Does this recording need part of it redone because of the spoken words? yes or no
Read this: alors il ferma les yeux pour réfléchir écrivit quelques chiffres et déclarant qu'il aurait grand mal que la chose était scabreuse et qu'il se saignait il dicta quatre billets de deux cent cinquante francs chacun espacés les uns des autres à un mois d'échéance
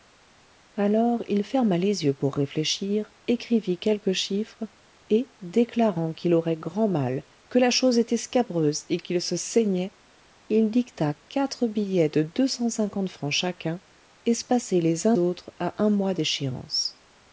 yes